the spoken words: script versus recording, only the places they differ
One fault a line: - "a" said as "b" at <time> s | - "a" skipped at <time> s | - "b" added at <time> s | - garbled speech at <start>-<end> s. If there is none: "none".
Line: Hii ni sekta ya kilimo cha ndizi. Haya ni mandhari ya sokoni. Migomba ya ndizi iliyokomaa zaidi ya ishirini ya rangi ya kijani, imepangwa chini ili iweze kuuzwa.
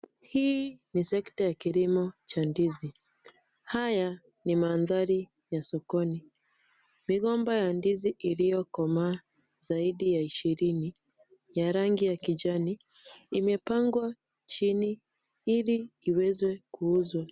none